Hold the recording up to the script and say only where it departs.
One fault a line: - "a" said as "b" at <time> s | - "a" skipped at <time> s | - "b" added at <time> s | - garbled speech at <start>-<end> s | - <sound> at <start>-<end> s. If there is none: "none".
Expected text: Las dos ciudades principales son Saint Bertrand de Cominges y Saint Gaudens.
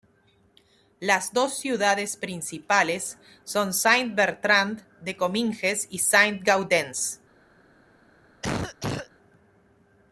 - cough at 8.4-9.1 s